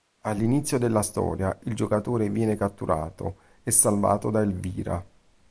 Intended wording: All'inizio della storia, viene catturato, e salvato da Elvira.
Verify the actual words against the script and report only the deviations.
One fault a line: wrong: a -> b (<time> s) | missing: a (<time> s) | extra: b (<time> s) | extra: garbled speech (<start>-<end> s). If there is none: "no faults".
extra: il giocatore (1.6 s)